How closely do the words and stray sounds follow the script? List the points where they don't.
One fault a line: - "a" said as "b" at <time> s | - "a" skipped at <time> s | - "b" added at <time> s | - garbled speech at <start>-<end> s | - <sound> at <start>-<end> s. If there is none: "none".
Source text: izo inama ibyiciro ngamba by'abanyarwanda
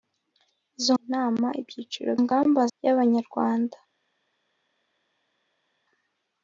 none